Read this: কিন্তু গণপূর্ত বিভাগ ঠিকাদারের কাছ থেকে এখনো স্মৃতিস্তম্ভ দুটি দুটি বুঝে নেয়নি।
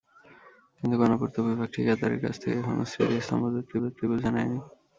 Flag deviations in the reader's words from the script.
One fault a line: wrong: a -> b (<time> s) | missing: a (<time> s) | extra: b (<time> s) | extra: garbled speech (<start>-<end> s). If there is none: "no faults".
no faults